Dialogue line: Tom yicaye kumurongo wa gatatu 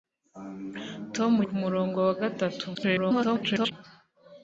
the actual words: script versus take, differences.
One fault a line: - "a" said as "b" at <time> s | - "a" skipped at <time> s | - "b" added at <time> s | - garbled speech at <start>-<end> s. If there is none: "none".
- "yicaye" skipped at 1.3 s
- garbled speech at 2.7-3.7 s